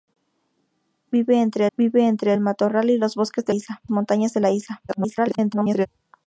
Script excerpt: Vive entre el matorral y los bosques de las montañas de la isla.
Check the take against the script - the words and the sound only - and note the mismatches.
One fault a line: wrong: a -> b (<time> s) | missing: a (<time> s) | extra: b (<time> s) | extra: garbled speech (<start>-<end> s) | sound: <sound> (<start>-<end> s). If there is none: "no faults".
extra: vive entre (1.8 s)
wrong: las -> isla (3.5 s)
extra: garbled speech (4.9-5.9 s)